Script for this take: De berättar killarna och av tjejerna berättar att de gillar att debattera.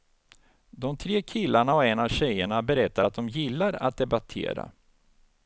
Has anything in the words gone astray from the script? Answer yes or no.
yes